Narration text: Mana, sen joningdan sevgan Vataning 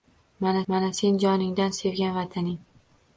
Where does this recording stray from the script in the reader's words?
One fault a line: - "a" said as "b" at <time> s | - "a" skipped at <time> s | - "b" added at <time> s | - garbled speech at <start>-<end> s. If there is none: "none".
- "mana" added at 0.7 s